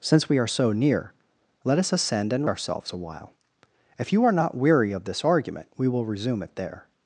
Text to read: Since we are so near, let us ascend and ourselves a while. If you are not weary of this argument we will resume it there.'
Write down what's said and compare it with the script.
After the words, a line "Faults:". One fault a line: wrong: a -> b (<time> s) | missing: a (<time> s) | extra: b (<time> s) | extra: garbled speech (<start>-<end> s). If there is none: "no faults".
Since we are so near, let us ascend and ourselves a while. If you are not weary of this argument we will resume it there.'
Faults:
no faults